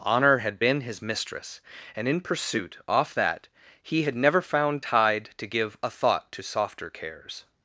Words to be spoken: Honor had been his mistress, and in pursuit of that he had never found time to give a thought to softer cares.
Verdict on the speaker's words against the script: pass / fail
fail